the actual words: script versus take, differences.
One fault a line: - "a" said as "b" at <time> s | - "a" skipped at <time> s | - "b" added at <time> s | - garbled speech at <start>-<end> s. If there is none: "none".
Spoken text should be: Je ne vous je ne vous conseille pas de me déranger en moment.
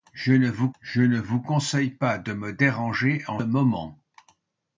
none